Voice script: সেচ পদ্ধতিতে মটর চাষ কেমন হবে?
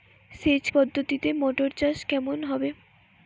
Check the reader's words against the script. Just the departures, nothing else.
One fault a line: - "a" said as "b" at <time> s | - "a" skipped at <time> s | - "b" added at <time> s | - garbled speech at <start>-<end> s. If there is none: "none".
none